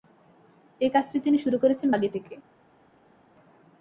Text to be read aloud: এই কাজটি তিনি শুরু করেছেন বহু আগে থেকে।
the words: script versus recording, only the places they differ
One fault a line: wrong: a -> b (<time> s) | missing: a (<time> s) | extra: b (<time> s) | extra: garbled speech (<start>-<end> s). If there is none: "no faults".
missing: বহু (1.9 s)